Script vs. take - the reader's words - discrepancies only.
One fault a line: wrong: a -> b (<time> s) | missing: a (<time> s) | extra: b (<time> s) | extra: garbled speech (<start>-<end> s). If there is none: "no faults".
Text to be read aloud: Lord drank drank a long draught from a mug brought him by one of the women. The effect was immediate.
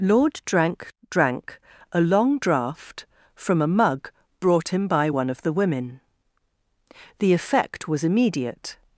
no faults